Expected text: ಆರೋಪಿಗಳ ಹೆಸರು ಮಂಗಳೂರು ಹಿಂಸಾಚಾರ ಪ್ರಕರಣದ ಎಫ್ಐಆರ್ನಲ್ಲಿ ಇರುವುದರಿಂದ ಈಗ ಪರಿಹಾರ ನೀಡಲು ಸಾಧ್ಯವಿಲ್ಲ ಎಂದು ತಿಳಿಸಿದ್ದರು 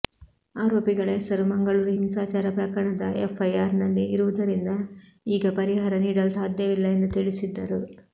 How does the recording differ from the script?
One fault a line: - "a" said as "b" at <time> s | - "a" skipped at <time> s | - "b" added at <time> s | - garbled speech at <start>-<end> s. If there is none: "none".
none